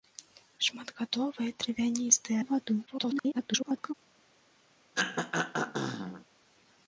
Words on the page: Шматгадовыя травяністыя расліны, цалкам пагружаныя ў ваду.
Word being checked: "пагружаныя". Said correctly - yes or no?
no